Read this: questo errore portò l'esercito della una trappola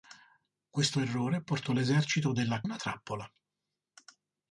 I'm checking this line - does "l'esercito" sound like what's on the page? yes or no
yes